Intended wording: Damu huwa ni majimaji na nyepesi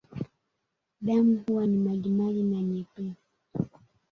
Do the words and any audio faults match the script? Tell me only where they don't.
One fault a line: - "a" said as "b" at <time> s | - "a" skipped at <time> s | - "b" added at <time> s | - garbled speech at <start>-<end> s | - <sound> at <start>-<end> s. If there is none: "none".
none